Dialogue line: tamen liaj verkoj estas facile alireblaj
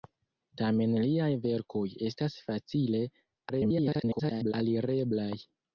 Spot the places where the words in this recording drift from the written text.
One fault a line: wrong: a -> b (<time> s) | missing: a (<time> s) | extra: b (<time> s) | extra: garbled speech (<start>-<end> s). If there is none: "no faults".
extra: garbled speech (3.5-4.5 s)